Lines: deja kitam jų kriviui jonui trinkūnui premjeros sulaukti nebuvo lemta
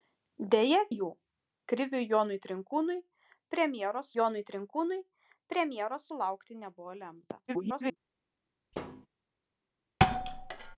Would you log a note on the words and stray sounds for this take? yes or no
yes